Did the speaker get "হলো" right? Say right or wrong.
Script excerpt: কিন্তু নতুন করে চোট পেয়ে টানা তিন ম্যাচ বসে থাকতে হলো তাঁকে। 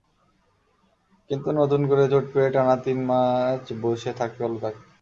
right